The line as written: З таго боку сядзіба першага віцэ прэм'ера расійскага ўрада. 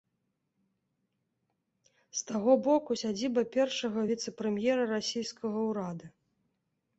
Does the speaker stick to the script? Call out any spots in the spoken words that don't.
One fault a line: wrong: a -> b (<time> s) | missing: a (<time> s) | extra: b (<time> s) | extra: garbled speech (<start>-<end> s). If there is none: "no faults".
no faults